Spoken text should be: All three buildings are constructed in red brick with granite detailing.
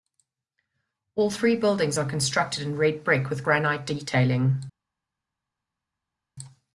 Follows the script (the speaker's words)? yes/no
yes